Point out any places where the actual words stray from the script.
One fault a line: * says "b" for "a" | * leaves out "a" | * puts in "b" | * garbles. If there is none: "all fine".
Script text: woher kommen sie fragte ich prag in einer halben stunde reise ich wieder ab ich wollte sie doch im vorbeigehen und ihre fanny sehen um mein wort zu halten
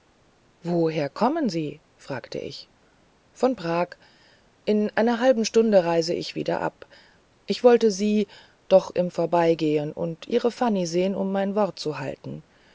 * puts in "von"